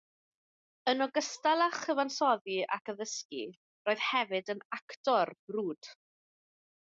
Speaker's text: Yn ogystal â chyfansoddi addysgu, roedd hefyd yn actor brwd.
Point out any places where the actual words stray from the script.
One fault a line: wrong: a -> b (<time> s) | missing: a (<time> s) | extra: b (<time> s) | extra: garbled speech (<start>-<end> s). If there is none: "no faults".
extra: ac (2.8 s)